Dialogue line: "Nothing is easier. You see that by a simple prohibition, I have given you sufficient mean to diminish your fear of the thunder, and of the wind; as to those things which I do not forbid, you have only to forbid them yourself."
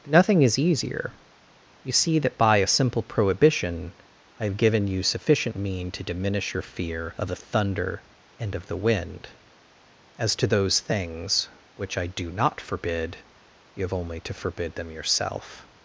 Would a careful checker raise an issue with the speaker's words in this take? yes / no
no